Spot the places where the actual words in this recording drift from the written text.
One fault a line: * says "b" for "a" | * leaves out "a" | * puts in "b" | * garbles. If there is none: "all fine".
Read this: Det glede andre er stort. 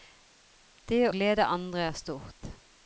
all fine